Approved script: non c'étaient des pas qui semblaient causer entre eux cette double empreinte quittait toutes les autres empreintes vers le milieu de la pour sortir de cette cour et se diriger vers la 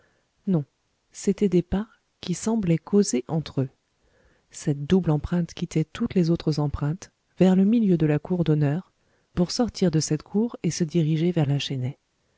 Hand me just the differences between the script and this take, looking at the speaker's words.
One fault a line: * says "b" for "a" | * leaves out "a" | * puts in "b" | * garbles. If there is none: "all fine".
* puts in "cour d'honneur"